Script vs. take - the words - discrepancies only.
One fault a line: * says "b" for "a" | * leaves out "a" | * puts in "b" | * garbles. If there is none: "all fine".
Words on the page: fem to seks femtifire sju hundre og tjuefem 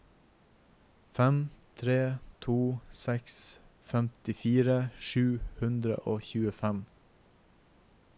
* puts in "tre"